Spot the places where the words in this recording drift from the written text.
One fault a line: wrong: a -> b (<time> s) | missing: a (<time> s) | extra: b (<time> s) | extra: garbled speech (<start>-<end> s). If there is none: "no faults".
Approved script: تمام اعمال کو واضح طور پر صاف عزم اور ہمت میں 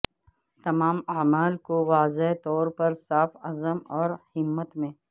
no faults